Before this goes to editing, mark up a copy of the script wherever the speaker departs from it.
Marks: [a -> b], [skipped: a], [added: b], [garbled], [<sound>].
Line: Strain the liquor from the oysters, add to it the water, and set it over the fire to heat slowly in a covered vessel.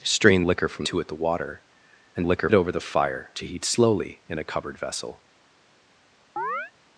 Strain [skipped: the] liquor from [skipped: the oysters, add] to it the water, and [set -> liquor] it over the fire to heat slowly in a covered vessel. [chirp]